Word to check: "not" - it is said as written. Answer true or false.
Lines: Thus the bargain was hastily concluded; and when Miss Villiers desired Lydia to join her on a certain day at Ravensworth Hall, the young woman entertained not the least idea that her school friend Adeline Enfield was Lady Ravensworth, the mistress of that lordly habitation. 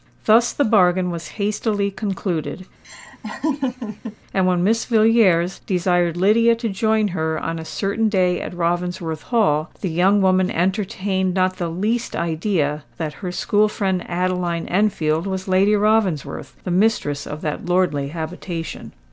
true